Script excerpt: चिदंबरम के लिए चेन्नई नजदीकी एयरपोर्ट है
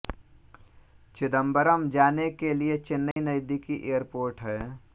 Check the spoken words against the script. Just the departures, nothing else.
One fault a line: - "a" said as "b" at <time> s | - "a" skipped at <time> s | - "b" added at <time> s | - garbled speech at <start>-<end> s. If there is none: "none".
- "जाने" added at 2.0 s